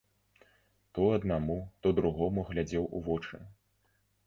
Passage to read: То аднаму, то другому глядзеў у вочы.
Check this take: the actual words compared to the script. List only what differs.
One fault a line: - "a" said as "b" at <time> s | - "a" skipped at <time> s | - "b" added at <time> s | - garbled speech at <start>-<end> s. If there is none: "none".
none